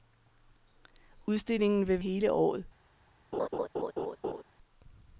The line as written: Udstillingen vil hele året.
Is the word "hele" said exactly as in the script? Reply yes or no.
yes